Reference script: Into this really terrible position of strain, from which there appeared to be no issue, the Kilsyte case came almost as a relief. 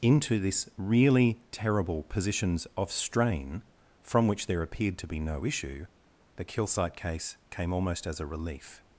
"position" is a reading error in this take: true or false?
true